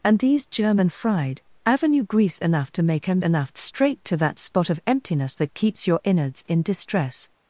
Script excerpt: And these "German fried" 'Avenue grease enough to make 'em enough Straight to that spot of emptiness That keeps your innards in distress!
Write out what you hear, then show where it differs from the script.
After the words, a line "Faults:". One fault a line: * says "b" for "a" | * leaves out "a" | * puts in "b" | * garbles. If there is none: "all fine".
And these "German fried" 'Avenue grease enough to make 'em enough Straight to that spot of emptiness That keeps your innards in distress!
Faults:
all fine